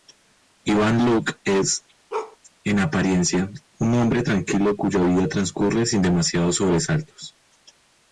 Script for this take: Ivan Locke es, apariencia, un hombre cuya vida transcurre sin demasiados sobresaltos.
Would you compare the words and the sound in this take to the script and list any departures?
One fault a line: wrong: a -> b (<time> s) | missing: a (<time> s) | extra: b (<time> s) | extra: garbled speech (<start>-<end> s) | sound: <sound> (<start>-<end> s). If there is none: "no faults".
sound: bark (2.1-2.4 s)
extra: en (2.6 s)
extra: tranquilo (4.2 s)